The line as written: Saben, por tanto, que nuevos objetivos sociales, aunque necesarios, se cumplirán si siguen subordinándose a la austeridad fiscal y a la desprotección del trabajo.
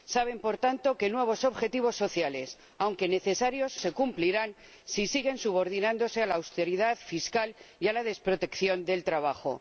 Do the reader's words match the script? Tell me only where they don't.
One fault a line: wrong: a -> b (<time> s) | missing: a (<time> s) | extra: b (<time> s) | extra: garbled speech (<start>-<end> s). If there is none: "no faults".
no faults